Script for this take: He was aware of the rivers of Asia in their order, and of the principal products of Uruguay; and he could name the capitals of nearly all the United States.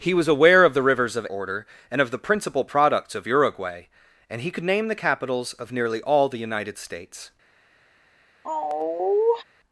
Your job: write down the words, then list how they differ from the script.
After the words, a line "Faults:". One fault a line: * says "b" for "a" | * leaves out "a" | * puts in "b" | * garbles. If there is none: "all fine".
He was aware of the rivers of Order, and of the principal products of Uruguay; and he could name the capitals of nearly all the United States.
Faults:
* leaves out "Asia in their"